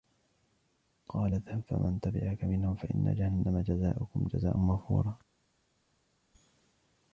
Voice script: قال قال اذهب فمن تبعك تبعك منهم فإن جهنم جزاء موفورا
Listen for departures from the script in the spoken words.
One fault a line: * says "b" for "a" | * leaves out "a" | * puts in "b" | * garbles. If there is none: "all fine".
* leaves out "قال"
* leaves out "تبعك"
* puts in "جزاؤكم"